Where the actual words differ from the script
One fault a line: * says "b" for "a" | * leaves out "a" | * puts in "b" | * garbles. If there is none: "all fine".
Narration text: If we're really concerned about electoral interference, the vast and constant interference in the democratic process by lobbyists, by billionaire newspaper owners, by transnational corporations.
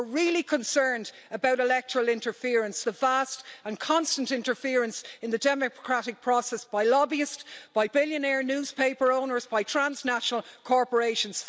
all fine